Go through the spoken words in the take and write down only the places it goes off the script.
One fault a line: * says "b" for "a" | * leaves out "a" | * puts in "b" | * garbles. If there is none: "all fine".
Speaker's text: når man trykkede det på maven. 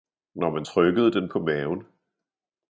* says "den" for "det"